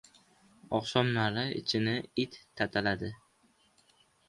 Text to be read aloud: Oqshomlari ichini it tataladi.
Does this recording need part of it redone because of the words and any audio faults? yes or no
no